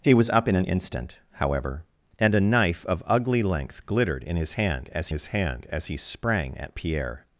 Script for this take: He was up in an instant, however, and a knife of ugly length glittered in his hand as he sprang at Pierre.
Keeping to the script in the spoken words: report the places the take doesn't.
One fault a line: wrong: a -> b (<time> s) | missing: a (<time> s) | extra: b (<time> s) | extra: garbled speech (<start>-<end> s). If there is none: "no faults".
extra: his hand as (5.1 s)